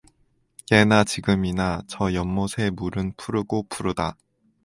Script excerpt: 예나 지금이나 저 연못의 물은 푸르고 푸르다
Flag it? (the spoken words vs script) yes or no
no